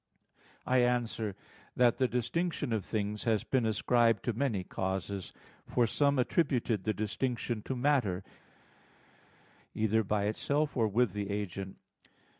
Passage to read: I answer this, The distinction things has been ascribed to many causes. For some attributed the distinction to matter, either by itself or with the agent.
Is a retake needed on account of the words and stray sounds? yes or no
yes